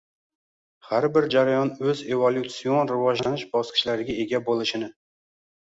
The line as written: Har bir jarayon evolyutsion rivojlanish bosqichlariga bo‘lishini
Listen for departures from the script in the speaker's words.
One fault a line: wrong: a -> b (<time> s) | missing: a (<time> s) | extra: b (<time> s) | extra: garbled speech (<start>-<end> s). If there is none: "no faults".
extra: o‘z (1.9 s)
extra: ega (4.3 s)